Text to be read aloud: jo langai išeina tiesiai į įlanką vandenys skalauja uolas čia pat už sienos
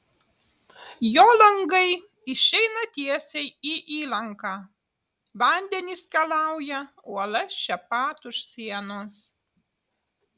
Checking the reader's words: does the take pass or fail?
pass